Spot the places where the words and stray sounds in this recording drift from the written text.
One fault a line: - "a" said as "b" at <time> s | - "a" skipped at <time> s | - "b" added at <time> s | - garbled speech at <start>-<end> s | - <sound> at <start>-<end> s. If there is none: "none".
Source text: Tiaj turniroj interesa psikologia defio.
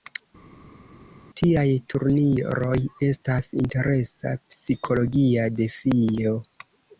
- "estas" added at 3.1 s